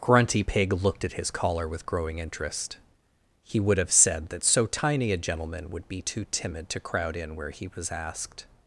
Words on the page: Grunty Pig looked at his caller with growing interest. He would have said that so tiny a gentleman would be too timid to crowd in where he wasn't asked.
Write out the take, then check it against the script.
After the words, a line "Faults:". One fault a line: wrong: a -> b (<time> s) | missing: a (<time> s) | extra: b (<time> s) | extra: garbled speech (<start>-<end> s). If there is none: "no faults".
Grunty Pig looked at his caller with growing interest. He would have said that so tiny a gentleman would be too timid to crowd in where he was asked.
Faults:
wrong: wasn't -> was (7.7 s)